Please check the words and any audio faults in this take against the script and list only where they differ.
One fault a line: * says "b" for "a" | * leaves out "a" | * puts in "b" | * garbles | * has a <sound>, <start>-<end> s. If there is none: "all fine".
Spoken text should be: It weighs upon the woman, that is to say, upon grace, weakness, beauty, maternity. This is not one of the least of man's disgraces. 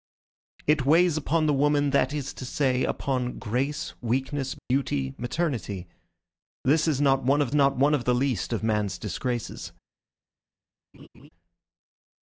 * has a dropout, 4.6-4.7 s
* puts in "not one of"
* has a laugh, 10.9-11.3 s